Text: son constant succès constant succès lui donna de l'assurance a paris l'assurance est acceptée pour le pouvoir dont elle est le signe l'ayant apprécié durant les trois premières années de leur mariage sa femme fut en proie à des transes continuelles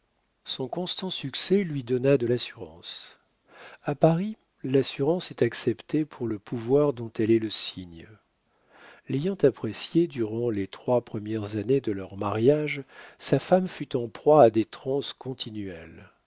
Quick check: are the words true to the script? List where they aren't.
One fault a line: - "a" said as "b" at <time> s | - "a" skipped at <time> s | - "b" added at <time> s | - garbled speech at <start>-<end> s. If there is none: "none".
- "constant succès" skipped at 1.6 s